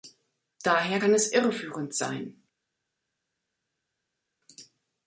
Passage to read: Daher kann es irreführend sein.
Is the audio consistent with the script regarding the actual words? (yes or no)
yes